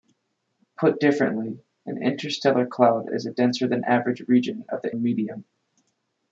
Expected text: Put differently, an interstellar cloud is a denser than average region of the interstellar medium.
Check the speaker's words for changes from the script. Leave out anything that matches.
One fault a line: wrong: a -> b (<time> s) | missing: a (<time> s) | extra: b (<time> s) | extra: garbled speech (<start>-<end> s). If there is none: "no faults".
missing: interstellar (5.0 s)